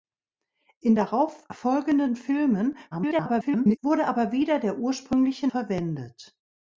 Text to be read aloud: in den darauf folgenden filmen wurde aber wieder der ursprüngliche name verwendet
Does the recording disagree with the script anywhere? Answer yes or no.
yes